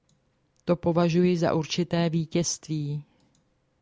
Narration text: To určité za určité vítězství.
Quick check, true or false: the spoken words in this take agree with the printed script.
false